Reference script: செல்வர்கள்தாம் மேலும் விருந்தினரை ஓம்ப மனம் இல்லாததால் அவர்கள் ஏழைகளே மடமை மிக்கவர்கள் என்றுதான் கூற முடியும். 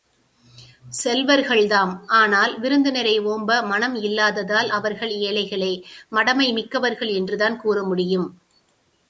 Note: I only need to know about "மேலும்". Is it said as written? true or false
false